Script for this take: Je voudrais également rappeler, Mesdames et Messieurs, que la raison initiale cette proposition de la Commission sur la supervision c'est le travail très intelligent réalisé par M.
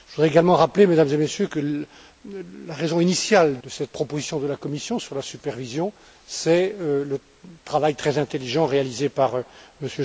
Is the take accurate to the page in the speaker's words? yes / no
yes